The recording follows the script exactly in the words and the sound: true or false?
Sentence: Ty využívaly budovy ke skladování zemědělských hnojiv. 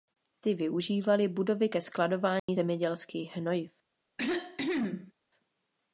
false